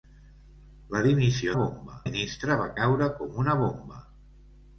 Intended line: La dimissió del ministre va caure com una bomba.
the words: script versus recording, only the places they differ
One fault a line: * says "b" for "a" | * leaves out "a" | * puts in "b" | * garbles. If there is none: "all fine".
* says "bomba" for "del"